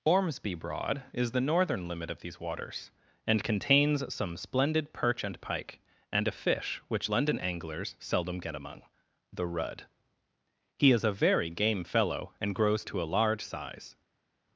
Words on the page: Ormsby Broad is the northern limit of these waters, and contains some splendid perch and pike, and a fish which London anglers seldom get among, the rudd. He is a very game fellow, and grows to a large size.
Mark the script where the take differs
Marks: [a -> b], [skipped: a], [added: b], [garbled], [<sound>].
Ormsby Broad is the northern limit of these waters, and contains some splendid perch and pike, and a fish which London anglers seldom get among, the rudd. He is a very game fellow, and grows to a large size.